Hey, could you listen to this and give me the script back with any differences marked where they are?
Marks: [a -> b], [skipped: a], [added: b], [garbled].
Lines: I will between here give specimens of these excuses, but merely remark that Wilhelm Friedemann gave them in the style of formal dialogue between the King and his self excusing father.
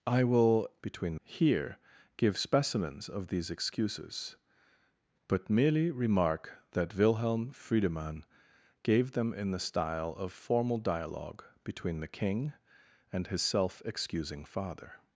I will between here give specimens of these excuses, but merely remark that Wilhelm Friedemann gave them in the style of formal dialogue between the King and his self excusing father.